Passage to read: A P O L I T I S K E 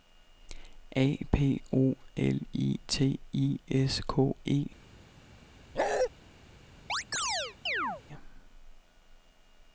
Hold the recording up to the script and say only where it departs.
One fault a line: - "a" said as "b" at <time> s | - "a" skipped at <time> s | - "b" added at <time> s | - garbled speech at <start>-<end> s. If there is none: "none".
none